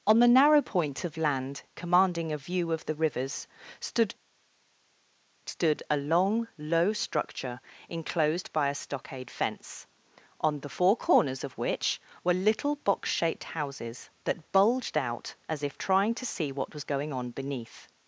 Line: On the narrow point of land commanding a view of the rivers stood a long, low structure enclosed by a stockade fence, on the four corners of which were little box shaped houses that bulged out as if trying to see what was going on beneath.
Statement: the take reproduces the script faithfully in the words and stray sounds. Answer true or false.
false